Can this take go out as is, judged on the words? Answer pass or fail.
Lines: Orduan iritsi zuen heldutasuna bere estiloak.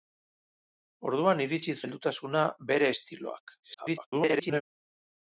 fail